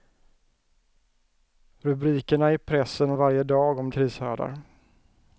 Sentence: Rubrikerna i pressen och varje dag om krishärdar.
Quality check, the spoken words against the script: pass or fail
pass